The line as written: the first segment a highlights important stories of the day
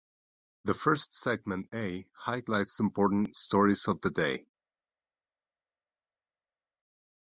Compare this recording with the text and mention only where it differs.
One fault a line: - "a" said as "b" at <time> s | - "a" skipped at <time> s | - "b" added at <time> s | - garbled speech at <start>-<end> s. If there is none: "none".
none